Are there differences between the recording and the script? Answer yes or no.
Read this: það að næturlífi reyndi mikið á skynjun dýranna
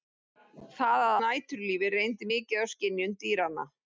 no